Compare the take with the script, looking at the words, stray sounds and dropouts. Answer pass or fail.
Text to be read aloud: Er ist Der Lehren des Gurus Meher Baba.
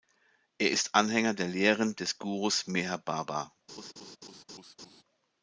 fail